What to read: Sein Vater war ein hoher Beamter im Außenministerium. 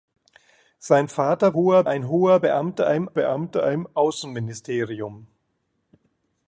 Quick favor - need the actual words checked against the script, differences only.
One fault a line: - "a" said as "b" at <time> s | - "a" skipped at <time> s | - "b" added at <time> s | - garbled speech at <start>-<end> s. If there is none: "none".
- "war" said as "hoher" at 1.5 s
- "Beamter im" added at 3.1 s